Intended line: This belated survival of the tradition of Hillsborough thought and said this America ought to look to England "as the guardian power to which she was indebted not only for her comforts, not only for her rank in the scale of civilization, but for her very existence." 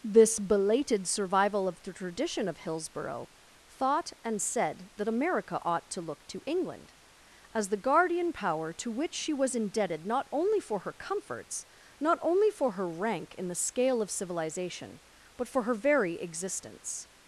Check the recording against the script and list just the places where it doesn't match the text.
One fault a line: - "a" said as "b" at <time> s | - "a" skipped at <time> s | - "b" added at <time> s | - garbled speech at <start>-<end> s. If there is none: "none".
- "this" said as "that" at 5.0 s